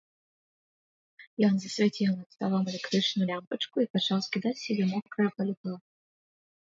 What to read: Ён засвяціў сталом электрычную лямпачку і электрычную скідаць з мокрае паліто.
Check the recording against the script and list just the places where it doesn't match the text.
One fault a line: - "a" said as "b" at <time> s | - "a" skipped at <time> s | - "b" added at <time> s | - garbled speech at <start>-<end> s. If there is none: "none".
- "над" added at 2.2 s
- "электрычную" said as "пачаў" at 4.0 s
- "сябе" added at 4.7 s